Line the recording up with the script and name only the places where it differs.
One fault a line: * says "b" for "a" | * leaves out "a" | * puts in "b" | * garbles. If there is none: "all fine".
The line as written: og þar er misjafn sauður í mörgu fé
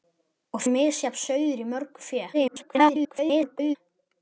* leaves out "þar"
* garbles